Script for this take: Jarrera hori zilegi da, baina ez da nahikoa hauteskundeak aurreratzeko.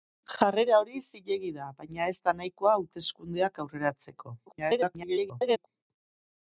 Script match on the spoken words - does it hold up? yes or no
no